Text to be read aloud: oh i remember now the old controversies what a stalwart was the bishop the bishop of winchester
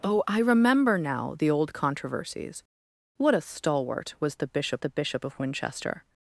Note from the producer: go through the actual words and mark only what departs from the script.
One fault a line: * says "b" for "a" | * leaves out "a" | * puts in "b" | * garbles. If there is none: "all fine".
all fine